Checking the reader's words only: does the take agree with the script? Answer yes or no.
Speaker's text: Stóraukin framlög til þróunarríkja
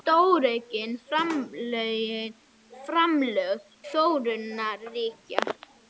no